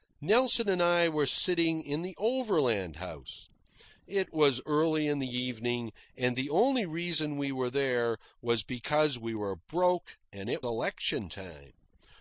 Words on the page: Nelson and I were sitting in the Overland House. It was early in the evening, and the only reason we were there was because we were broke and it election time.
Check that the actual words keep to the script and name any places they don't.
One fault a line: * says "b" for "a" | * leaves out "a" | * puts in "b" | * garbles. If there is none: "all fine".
all fine